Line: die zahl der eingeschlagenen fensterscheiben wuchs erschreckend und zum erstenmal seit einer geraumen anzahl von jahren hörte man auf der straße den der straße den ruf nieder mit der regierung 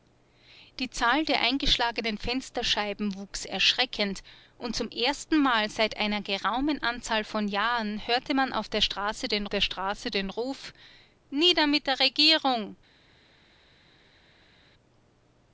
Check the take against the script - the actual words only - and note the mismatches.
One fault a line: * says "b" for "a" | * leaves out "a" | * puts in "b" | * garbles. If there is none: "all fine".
all fine